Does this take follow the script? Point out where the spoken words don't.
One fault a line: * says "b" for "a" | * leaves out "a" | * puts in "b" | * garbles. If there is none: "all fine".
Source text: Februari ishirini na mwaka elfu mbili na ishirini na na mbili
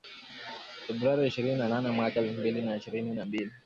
* puts in "nane"
* leaves out "na"